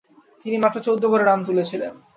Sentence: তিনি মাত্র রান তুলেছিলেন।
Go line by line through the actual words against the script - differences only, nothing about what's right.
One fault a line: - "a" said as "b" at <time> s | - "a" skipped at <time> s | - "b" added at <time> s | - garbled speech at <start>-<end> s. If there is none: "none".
- "চৌদ্দ গড়ে" added at 0.8 s